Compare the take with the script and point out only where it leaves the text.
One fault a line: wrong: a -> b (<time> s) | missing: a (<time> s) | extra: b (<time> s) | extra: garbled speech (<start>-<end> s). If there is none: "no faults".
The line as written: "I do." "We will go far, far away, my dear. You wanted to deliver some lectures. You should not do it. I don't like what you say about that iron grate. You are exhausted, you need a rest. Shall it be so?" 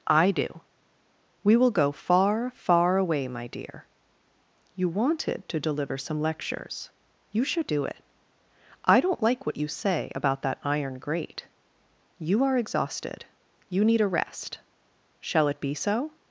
missing: not (7.7 s)